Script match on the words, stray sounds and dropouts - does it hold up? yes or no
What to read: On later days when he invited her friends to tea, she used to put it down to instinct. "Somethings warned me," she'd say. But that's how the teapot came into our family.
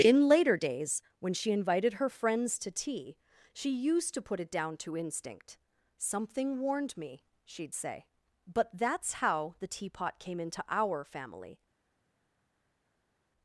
no